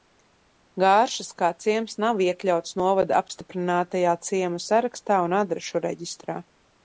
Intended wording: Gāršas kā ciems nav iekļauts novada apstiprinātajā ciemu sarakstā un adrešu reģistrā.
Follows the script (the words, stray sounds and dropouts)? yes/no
yes